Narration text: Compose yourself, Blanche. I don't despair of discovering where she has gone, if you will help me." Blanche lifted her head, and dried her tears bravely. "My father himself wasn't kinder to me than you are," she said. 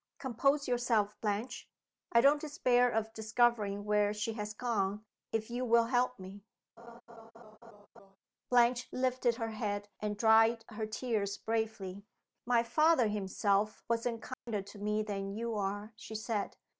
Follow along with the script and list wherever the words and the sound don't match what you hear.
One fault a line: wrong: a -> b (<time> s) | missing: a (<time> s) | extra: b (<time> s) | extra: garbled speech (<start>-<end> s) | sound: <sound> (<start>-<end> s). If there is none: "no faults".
sound: laugh (6.8-8.2 s)
sound: dropout (14.3-14.5 s)